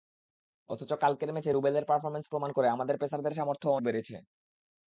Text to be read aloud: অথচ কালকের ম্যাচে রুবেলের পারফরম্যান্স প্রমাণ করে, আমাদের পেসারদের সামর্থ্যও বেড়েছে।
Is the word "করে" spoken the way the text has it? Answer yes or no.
yes